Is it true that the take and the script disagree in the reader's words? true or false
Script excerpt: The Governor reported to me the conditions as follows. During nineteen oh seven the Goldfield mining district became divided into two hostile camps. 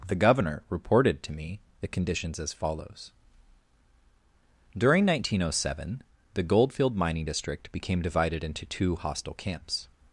false